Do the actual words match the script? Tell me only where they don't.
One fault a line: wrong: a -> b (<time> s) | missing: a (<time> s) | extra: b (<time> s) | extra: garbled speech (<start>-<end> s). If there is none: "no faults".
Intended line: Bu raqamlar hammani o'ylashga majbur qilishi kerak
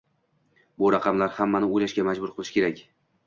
no faults